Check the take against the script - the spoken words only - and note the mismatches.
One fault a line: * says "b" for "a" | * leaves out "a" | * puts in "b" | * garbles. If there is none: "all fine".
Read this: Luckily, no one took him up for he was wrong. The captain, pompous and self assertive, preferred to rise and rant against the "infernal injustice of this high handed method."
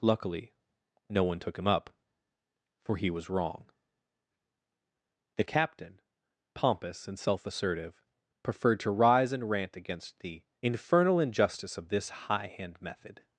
* says "hand" for "handed"